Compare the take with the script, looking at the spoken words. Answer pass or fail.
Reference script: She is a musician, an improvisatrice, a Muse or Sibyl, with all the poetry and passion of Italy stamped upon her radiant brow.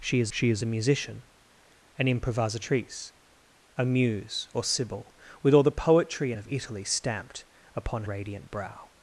fail